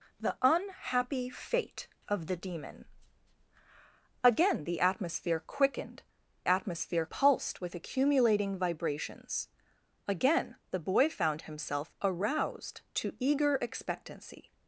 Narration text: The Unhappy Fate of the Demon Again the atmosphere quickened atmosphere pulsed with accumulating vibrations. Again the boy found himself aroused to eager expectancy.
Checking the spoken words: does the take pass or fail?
pass